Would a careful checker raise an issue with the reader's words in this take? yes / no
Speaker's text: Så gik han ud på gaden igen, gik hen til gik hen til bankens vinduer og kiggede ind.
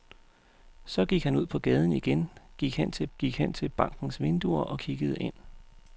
no